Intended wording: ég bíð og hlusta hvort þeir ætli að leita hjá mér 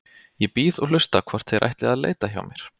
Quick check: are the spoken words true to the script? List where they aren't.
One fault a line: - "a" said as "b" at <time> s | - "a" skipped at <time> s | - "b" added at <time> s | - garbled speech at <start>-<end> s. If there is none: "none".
none